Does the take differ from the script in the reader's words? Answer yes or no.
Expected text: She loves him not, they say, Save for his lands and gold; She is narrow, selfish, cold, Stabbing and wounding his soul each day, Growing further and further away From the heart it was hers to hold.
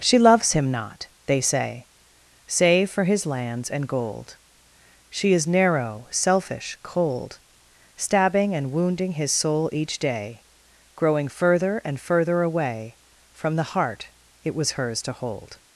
no